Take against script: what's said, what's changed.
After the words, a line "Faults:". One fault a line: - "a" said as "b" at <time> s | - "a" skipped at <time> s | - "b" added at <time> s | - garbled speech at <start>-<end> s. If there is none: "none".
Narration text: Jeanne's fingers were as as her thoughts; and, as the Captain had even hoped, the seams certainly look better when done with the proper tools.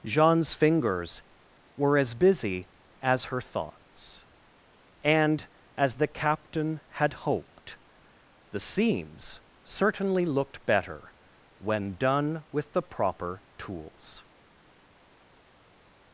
Jeanne's fingers were as busy as her thoughts; and, as the Captain had hoped, the seams certainly looked better when done with the proper tools.
Faults:
- "busy" added at 2.1 s
- "even" skipped at 7.1 s
- "look" said as "looked" at 10.3 s